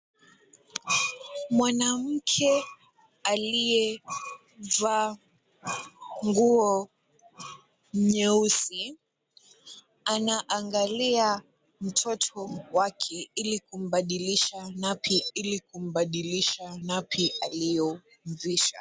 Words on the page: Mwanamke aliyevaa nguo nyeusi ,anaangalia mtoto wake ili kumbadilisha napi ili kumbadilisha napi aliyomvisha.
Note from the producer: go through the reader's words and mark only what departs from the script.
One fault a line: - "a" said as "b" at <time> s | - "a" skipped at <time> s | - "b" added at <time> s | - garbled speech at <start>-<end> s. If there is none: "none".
none